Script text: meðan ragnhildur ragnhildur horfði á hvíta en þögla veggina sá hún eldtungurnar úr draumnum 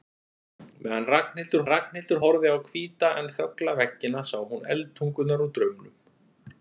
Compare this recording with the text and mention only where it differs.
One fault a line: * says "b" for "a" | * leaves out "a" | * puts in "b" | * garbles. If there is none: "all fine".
all fine